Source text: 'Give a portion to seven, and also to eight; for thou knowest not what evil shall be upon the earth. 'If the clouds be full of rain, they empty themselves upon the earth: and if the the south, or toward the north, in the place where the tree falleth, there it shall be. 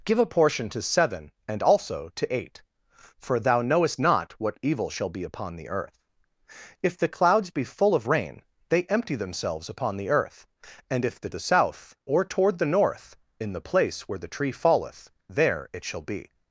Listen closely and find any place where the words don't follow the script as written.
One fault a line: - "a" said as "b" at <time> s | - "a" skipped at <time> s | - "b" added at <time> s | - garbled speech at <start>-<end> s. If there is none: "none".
none